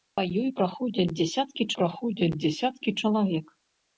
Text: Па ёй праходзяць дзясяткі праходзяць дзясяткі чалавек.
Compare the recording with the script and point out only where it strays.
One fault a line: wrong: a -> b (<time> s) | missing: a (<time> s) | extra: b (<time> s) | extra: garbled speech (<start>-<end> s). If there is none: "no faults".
no faults